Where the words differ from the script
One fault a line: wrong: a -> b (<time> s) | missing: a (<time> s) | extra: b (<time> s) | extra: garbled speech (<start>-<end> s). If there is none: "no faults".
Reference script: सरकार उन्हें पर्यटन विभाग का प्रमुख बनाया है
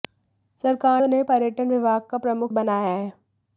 no faults